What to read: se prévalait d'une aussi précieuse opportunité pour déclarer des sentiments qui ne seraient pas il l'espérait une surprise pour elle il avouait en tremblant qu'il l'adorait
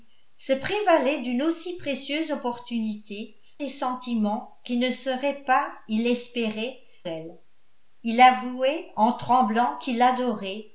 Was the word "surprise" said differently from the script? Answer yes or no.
yes